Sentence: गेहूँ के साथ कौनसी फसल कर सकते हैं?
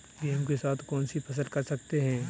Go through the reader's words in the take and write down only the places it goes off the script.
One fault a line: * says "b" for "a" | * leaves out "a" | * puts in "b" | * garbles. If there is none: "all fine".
all fine